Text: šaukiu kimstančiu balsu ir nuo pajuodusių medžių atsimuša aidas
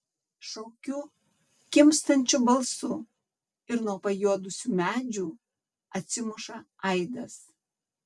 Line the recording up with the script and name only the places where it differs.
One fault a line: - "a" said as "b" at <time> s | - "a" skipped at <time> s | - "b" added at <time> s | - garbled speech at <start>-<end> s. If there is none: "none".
none